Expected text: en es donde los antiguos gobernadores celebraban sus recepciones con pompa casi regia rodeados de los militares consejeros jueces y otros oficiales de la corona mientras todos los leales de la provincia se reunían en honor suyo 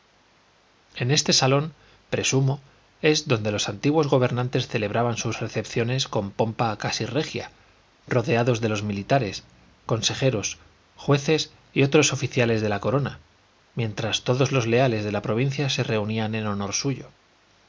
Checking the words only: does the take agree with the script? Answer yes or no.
no